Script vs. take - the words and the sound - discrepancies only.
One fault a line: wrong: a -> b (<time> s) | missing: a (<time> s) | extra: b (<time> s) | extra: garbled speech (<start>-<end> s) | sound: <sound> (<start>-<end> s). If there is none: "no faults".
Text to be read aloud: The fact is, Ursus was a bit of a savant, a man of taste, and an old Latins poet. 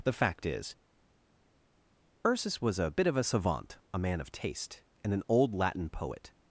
wrong: Latins -> Latin (5.5 s)